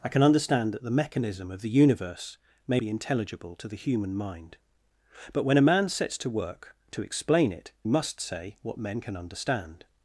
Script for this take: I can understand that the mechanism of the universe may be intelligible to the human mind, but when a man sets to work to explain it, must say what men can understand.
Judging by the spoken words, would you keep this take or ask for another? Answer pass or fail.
pass